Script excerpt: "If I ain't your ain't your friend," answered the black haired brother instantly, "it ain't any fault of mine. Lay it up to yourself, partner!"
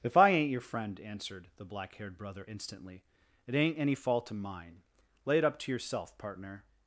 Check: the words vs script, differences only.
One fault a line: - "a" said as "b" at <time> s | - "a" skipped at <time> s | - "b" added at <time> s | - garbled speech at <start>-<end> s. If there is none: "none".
- "ain't your" skipped at 0.6 s